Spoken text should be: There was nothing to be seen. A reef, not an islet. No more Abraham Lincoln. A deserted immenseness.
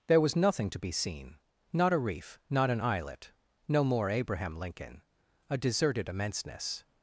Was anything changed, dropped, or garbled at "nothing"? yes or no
no